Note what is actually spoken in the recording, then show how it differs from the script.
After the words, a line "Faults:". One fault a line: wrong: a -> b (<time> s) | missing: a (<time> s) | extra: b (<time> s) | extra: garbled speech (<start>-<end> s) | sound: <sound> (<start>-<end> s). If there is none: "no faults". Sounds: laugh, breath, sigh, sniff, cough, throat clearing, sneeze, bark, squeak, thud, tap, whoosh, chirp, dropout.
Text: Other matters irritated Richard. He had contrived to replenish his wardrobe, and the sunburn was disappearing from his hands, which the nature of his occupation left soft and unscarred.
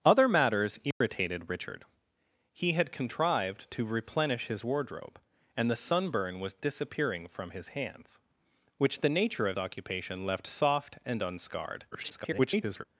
Other matters irritated Richard. He had contrived to replenish his wardrobe, and the sunburn was disappearing from his hands, which the nature of occupation left soft and unscarred. [garbled]
Faults:
sound: dropout (0.9-1.0 s)
missing: his (9.6 s)
extra: garbled speech (11.9-12.8 s)